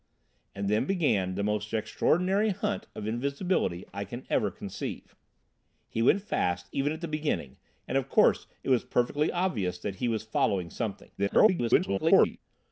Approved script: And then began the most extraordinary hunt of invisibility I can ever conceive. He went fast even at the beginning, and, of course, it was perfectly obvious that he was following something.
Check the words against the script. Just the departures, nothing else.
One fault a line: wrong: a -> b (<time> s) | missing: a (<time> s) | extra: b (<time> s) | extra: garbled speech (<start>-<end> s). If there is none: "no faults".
extra: garbled speech (11.2-12.4 s)